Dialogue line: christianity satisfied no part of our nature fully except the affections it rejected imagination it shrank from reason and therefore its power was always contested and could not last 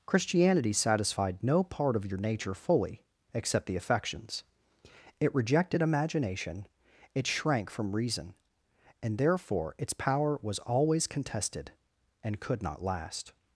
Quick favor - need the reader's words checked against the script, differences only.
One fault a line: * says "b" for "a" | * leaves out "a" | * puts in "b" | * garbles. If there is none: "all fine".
* says "your" for "our"